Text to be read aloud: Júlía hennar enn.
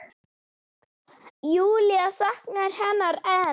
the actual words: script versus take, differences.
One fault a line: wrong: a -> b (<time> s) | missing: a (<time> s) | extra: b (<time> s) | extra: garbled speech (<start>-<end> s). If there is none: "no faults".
extra: saknar (2.1 s)